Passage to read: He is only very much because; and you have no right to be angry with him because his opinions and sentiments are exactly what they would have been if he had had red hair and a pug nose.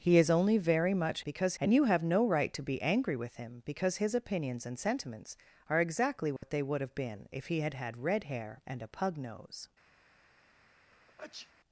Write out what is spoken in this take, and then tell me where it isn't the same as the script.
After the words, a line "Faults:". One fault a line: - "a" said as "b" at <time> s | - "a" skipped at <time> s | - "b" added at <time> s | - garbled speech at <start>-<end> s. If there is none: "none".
He is only very much because; and you have no right to be angry with him because his opinions and sentiments are exactly what they would have been if he had had red hair and a pug nose.
Faults:
none